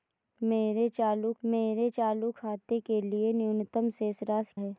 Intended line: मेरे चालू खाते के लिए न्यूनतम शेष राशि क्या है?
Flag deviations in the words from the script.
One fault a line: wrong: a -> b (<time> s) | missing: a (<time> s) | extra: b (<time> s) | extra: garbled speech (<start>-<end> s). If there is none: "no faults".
extra: मेरे चालू (1.4 s)
missing: क्या (4.5 s)